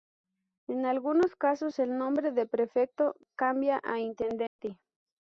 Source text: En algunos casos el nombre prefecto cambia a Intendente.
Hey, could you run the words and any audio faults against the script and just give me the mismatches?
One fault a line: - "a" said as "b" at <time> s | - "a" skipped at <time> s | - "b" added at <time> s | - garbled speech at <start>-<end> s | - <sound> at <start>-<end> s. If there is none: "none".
- "de" added at 2.3 s
- dropout at 4.5-4.6 s